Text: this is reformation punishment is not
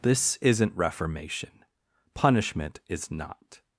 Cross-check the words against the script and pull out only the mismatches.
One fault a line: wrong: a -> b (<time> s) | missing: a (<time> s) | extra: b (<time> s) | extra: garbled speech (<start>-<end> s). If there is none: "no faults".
wrong: is -> isn't (0.4 s)